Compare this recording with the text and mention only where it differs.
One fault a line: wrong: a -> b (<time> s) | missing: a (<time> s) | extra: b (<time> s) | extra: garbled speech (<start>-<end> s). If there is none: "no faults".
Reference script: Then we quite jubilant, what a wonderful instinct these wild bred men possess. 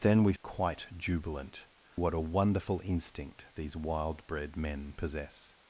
no faults